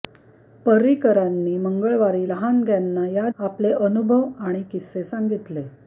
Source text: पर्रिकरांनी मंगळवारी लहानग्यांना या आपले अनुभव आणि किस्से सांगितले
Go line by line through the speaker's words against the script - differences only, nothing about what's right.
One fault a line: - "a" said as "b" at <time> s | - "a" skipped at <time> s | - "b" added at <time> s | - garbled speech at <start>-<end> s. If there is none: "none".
none